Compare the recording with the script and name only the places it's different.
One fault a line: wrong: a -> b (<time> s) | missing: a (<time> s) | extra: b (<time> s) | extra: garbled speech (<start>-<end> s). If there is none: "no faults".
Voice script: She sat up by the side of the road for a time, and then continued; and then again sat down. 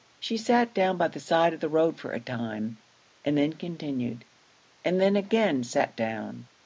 wrong: up -> down (0.7 s)